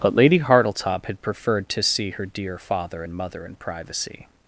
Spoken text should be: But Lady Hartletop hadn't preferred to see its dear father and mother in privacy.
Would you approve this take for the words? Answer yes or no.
no